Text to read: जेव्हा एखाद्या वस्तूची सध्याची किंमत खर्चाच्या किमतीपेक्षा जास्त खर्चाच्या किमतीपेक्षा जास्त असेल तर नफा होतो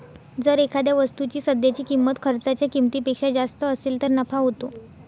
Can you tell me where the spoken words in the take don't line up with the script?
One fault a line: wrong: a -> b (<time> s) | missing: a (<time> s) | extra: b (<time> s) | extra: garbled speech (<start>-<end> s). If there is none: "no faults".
wrong: जेव्हा -> जर (0.4 s)
missing: खर्चाच्या किमतीपेक्षा जास्त (3.6 s)